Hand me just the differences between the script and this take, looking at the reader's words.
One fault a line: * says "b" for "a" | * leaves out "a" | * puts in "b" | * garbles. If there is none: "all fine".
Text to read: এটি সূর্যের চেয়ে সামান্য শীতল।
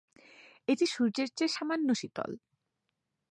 all fine